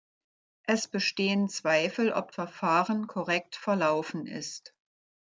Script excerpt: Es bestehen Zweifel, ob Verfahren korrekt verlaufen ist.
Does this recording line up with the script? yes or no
yes